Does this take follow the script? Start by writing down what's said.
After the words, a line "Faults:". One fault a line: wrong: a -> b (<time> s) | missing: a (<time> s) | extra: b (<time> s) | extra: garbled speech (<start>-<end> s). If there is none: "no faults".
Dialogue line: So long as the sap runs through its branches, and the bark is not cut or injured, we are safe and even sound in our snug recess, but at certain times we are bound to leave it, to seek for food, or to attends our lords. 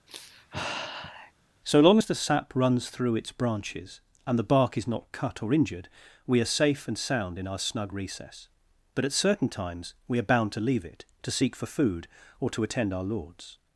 So long as the sap runs through its branches, and the bark is not cut or injured, we are safe and sound in our snug recess, but at certain times we are bound to leave it, to seek for food, or to attend our lords.
Faults:
missing: even (7.0 s)
wrong: attends -> attend (12.6 s)